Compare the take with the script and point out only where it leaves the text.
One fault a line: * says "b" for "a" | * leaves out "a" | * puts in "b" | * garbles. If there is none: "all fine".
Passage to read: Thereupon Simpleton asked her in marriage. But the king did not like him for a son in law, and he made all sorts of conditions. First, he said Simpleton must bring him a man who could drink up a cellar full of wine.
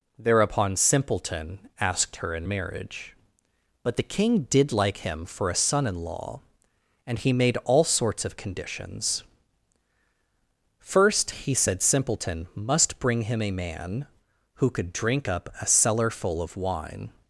* leaves out "not"